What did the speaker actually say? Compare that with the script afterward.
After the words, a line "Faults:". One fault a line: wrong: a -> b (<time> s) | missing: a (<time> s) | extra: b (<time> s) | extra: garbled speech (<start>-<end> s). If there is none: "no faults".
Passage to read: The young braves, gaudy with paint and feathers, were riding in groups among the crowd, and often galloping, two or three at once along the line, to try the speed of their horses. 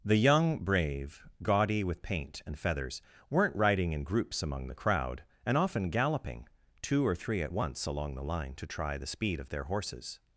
The young brave, gaudy with paint and feathers, weren't riding in groups among the crowd, and often galloping, two or three at once along the line, to try the speed of their horses.
Faults:
wrong: braves -> brave (0.6 s)
wrong: were -> weren't (3.3 s)